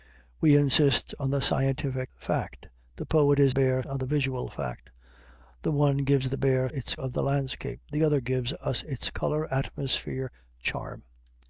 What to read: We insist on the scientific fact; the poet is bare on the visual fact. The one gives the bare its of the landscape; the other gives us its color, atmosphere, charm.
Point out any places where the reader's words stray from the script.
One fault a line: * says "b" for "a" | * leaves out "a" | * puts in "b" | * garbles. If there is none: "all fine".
all fine